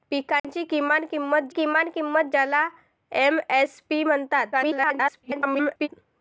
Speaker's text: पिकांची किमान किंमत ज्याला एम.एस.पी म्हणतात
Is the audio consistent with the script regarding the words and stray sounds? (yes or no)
no